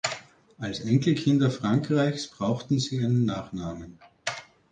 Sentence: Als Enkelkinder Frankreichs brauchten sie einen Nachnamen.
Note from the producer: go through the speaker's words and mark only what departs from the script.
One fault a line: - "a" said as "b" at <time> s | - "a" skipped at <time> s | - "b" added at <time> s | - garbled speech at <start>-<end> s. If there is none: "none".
none